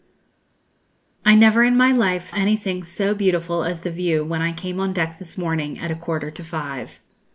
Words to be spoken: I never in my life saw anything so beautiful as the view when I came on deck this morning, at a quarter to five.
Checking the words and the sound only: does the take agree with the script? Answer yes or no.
no